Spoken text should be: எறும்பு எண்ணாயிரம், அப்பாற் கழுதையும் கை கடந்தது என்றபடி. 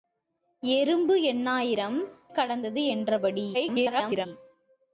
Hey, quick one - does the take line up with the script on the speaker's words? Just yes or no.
no